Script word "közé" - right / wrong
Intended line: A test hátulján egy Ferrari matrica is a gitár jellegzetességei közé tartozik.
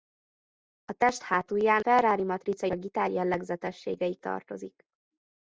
wrong